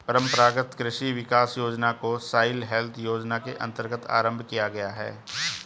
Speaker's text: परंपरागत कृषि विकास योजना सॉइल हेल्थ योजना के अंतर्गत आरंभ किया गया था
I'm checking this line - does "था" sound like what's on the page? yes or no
no